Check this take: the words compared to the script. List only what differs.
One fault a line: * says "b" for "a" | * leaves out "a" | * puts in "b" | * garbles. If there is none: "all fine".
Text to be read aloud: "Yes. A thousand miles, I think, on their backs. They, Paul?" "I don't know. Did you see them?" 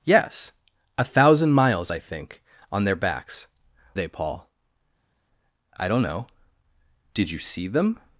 all fine